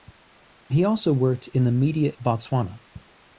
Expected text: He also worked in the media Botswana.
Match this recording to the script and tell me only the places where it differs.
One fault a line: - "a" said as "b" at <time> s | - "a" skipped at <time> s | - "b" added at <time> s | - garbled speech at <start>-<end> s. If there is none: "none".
none